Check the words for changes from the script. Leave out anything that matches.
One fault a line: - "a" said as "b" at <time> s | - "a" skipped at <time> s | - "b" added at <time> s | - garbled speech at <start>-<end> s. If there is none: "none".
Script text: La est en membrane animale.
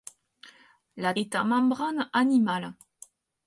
none